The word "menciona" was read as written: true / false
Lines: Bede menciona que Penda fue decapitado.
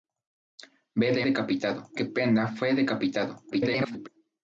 false